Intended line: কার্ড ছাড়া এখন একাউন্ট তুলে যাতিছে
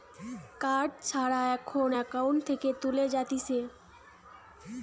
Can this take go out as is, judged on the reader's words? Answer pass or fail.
fail